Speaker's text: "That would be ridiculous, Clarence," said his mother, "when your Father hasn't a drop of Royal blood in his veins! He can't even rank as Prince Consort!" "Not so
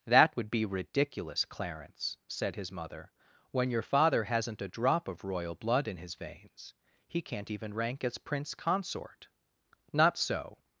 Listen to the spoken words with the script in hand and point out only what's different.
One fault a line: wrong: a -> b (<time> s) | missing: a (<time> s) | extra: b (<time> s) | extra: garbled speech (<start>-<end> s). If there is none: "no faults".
no faults